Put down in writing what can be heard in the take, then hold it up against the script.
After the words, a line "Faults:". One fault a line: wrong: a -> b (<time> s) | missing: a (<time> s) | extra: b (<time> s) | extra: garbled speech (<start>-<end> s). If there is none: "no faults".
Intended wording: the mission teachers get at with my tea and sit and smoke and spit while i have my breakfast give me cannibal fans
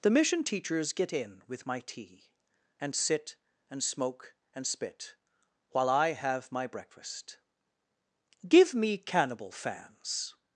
the mission teachers get in with my tea and sit and smoke and spit while i have my breakfast give me cannibal fans
Faults:
wrong: at -> in (1.1 s)